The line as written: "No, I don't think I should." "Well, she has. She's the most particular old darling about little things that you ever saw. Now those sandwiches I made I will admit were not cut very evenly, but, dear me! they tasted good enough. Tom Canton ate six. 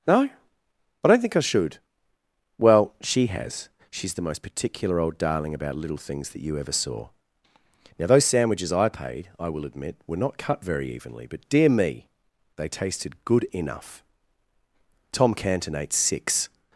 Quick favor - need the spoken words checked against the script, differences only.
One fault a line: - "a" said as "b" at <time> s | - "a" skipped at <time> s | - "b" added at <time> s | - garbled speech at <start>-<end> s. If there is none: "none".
- "made" said as "paid" at 8.9 s